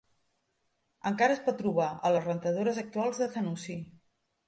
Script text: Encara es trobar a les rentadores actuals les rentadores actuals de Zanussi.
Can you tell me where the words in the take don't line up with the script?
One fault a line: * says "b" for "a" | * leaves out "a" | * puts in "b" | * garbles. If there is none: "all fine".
* puts in "pot"
* leaves out "les rentadores actuals"